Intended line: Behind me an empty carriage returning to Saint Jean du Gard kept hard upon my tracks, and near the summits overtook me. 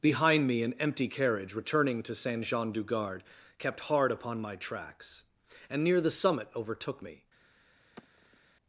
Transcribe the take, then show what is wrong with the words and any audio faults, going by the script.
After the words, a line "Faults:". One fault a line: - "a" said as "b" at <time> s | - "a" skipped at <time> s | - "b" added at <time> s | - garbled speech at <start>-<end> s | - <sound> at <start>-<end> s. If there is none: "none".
Behind me an empty carriage returning to Saint Jean du Gard kept hard upon my tracks, and near the summit overtook me.
Faults:
- "summits" said as "summit" at 6.1 s
- sigh at 8.0-8.4 s